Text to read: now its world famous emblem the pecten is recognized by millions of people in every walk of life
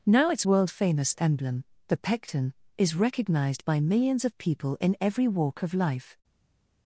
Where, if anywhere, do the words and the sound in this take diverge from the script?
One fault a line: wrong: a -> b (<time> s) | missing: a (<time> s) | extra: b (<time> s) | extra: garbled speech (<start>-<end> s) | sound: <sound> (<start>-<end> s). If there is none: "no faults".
no faults